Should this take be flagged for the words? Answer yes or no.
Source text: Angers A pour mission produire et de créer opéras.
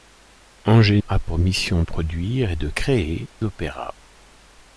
no